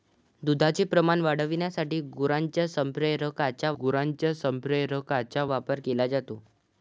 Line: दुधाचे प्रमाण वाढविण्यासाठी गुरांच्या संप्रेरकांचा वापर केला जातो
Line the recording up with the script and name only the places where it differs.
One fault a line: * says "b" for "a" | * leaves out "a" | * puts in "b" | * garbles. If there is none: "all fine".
* puts in "गुरांच्या संप्रेरकांचा"